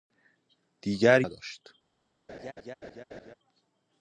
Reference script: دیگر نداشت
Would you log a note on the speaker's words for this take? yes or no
no